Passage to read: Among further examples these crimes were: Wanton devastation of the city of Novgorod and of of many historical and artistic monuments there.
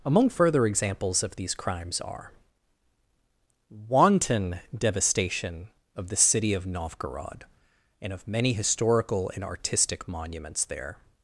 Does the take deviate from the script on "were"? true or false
true